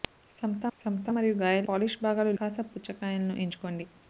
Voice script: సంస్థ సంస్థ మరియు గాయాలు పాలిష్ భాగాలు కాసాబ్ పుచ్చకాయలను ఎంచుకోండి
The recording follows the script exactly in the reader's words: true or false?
true